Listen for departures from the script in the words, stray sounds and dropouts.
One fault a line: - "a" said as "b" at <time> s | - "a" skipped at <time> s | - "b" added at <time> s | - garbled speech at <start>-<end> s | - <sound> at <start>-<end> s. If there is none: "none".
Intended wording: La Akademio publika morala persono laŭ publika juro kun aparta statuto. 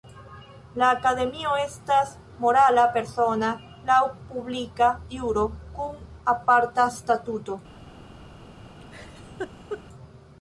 - "publika" said as "estas" at 1.6 s
- laugh at 8.8-9.8 s